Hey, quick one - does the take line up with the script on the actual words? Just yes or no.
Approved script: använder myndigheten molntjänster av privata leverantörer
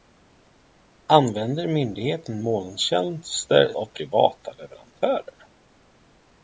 yes